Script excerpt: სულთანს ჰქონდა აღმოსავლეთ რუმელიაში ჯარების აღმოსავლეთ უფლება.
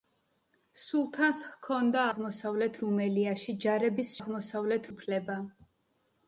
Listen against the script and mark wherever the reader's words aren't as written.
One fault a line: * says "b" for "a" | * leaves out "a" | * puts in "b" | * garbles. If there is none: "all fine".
all fine